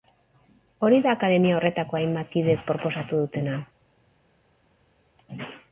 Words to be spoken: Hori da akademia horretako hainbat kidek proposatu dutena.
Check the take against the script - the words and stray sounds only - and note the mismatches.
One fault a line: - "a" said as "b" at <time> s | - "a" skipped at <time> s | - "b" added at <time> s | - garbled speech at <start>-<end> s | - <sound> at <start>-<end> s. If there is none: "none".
none